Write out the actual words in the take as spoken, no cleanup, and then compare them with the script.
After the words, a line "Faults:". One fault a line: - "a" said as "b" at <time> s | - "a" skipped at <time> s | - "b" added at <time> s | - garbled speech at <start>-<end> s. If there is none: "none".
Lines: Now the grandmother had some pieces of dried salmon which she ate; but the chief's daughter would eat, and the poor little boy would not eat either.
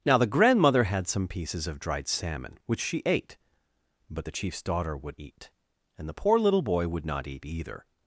Now the grandmother had some pieces of dried salmon which she ate; but the chief's daughter would eat, and the poor little boy would not eat either.
Faults:
none